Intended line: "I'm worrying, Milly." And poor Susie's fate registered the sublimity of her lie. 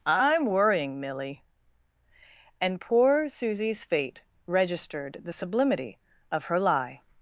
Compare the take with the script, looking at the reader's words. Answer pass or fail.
pass